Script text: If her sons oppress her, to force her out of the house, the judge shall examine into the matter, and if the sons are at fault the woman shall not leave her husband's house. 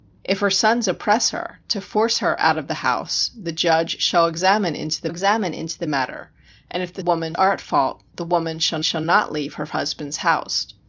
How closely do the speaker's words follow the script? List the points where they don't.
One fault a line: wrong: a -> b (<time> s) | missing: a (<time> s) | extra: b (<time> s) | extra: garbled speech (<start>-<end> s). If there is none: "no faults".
extra: examine into the (5.1 s)
wrong: sons -> woman (7.0 s)
extra: shall (8.8 s)